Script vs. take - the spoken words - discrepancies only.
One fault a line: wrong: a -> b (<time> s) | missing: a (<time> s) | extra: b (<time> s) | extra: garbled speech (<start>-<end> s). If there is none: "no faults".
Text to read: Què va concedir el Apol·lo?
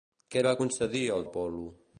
no faults